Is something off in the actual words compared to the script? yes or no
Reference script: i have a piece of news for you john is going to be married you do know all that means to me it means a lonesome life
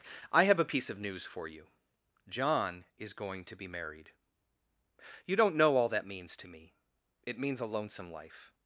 yes